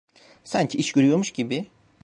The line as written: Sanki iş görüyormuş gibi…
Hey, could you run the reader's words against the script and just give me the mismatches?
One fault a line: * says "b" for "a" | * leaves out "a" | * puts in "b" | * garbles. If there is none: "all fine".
all fine